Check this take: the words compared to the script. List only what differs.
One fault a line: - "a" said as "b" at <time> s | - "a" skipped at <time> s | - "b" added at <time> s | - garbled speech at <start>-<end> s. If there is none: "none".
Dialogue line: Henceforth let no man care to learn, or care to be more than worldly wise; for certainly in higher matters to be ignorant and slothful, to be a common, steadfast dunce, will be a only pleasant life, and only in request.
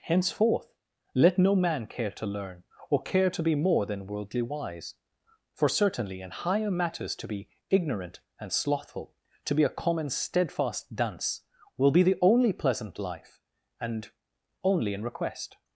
- "a" said as "the" at 12.0 s